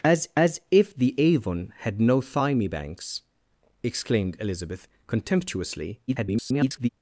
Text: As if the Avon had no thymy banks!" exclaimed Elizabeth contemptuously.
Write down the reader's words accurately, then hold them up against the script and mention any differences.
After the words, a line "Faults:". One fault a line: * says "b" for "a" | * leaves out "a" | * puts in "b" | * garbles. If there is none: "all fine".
As as if the Avon had no thymy banks!" exclaimed Elizabeth contemptuously. [garbled]
Faults:
* puts in "as"
* garbles